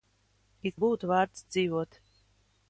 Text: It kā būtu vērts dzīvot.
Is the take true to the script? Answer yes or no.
no